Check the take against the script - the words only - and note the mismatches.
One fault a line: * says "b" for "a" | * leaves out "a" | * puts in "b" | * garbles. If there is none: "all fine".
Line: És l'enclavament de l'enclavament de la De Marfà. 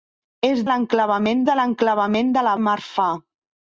all fine